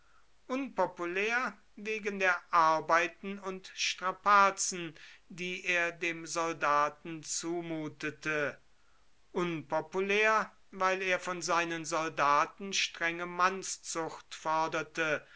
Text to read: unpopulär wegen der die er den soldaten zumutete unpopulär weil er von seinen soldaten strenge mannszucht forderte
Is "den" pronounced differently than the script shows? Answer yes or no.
yes